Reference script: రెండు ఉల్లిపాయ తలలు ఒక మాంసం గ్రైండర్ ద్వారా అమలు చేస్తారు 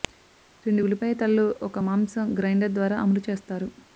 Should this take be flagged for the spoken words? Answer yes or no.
no